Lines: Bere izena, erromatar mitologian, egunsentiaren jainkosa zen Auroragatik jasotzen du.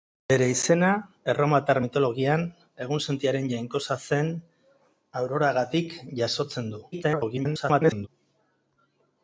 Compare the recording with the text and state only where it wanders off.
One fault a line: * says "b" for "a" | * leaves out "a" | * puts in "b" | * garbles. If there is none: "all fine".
* garbles